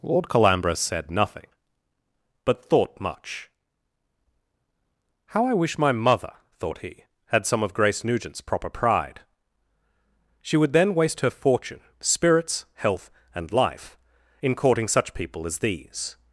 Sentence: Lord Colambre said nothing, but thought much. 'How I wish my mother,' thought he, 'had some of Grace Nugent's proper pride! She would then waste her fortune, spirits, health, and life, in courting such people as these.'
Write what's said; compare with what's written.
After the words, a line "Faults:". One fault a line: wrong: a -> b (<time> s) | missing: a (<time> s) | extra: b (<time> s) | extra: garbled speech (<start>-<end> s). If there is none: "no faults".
Lord Colambre said nothing, but thought much. 'How I wish my mother,' thought he, 'had some of Grace Nugent's proper pride! She would then waste her fortune, spirits, health, and life, in courting such people as these.'
Faults:
no faults